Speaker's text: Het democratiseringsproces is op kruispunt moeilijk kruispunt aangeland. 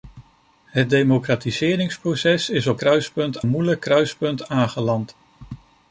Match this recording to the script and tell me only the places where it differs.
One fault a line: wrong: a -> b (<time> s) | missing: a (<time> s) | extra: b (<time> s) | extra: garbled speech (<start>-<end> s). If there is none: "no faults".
no faults